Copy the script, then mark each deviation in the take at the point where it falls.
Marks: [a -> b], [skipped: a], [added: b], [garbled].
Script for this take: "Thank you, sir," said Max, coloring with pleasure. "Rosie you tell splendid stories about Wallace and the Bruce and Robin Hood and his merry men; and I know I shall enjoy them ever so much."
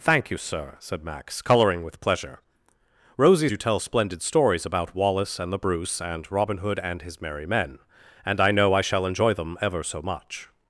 "Thank you, sir," said Max, coloring with pleasure. "Rosie you tell splendid stories about Wallace and the Bruce and Robin Hood and his merry men; and I know I shall enjoy them ever so much."